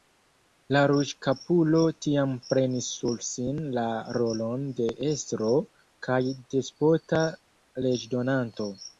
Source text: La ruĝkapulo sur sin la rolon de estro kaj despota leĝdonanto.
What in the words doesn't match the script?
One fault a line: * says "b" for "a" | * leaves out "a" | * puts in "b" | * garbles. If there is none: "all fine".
* puts in "tiam prenis"